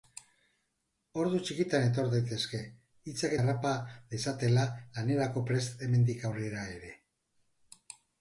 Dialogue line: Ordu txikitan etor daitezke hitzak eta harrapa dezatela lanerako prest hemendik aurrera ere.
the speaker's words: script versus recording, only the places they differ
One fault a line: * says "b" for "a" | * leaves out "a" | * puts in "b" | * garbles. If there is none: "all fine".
* leaves out "eta"